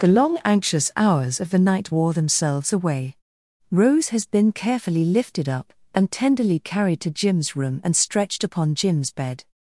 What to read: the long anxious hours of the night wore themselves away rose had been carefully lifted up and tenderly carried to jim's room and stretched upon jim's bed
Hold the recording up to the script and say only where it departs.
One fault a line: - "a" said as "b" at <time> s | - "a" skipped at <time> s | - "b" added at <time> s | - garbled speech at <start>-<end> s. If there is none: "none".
- "had" said as "has" at 4.1 s